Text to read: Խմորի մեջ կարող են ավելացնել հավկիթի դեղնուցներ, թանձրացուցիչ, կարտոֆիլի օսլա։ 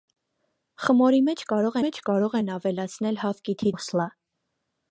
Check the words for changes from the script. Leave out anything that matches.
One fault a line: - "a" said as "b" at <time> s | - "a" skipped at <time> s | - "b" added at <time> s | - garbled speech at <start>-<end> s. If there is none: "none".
- "մեջ կարող" added at 1.8 s
- "դեղնուցներ թանձրացուցիչ կարտոֆիլի" skipped at 3.7 s